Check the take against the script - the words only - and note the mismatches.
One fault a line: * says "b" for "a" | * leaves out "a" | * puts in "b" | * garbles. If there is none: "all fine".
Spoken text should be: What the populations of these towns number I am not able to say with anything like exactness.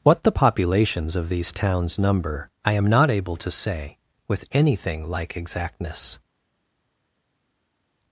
all fine